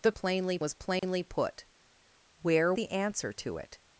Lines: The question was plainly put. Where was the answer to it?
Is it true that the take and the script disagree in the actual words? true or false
true